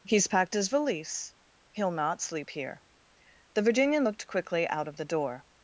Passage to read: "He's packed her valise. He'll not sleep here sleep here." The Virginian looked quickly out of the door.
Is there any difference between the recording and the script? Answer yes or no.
yes